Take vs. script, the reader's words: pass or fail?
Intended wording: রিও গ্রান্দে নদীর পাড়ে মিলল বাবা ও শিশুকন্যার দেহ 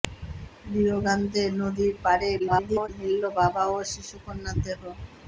fail